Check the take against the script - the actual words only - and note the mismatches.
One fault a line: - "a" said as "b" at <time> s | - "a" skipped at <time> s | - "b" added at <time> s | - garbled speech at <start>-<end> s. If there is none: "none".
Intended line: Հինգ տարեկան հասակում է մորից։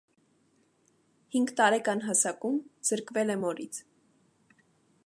- "զրկվել" added at 2.9 s